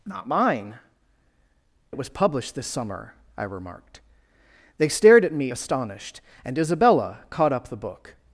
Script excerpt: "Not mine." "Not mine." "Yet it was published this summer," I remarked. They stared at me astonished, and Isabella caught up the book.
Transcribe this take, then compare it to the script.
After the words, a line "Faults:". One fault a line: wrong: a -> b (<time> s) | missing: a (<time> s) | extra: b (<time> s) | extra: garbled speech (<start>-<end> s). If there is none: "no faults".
"Not mine." "It was published this summer," I remarked. They stared at me astonished, and Isabella caught up the book.
Faults:
missing: Not mine Yet (0.8 s)